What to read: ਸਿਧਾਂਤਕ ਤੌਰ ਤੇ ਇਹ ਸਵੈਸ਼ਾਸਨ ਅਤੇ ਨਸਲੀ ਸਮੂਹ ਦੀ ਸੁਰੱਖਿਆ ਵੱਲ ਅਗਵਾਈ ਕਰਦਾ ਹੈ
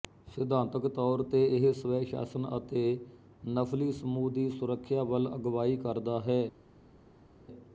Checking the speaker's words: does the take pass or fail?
pass